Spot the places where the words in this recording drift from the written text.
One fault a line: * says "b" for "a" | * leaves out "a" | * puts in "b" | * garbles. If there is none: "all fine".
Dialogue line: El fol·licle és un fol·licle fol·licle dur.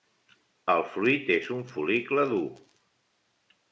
* says "fruit" for "fol·licle"
* leaves out "fol·licle"